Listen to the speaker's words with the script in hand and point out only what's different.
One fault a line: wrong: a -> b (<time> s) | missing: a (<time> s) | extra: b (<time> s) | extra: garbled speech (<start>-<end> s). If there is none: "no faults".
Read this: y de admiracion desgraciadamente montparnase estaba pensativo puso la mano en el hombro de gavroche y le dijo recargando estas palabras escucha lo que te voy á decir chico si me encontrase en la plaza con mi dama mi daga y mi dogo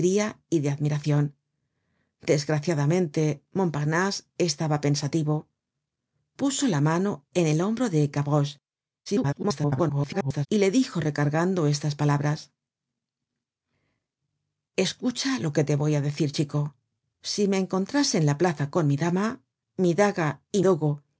extra: garbled speech (9.1-10.5 s)
missing: mi (20.6 s)